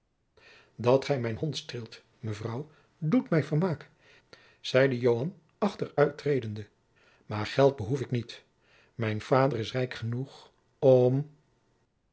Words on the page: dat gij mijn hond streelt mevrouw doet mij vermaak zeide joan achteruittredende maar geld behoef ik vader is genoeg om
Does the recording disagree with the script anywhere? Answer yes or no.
yes